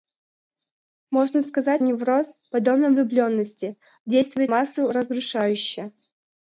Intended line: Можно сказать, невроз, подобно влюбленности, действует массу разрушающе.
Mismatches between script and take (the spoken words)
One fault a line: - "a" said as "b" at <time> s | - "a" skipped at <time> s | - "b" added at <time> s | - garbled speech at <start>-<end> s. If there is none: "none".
none